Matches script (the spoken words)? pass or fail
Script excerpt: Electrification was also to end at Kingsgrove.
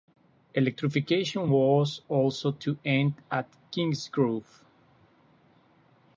pass